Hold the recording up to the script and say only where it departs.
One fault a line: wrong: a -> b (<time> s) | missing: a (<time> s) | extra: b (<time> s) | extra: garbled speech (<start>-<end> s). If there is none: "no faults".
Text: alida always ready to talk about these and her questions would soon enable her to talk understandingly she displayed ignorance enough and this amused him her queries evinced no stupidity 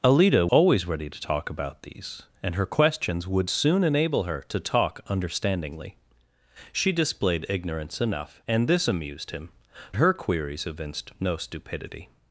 no faults